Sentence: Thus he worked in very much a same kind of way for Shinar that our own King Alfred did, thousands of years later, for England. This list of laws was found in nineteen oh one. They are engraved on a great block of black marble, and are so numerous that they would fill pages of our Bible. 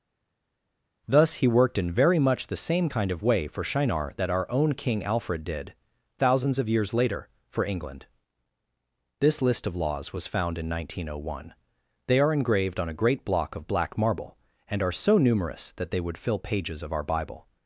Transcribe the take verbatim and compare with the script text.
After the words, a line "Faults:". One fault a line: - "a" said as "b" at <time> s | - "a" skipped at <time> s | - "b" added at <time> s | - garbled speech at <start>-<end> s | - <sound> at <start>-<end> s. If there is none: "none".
Thus he worked in very much the same kind of way for Shinar that our own King Alfred did, thousands of years later, for England. This list of laws was found in nineteen oh one. They are engraved on a great block of black marble, and are so numerous that they would fill pages of our Bible.
Faults:
- "a" said as "the" at 2.5 s